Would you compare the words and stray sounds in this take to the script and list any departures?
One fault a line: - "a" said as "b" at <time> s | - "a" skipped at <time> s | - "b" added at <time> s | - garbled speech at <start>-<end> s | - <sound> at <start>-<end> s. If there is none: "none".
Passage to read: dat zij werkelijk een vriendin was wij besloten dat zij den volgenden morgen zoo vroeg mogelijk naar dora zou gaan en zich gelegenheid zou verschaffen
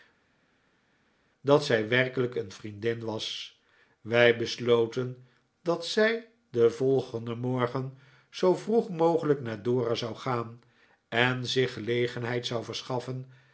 none